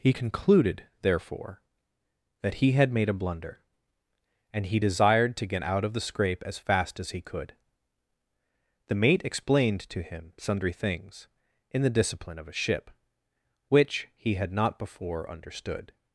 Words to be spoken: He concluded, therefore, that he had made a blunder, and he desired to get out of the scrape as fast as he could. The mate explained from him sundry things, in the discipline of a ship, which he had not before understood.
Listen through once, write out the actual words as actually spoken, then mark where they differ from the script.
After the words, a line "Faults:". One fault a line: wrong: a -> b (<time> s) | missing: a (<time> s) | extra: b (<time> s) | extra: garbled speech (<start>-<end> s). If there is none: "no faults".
He concluded, therefore, that he had made a blunder, and he desired to get out of the scrape as fast as he could. The mate explained to him sundry things, in the discipline of a ship, which he had not before understood.
Faults:
wrong: from -> to (9.9 s)